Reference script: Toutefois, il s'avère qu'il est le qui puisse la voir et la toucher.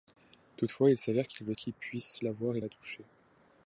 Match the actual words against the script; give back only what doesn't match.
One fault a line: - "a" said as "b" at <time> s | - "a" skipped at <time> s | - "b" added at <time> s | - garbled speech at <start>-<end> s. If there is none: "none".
none